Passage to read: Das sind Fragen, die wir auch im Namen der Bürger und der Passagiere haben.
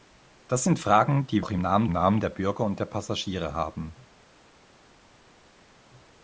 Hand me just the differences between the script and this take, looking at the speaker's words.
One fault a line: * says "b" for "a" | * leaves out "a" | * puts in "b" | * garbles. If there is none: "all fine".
* leaves out "wir"
* puts in "Namen"